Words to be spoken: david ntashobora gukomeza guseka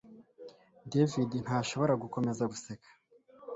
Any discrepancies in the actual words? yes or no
no